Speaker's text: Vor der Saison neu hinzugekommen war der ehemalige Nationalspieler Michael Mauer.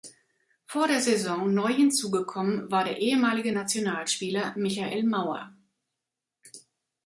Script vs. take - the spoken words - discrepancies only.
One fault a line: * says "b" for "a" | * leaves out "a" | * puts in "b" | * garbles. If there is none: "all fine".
all fine